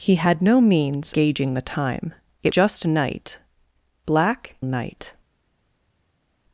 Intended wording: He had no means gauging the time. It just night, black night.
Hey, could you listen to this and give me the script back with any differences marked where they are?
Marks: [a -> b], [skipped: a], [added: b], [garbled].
He had no means gauging the time. It just night, black night.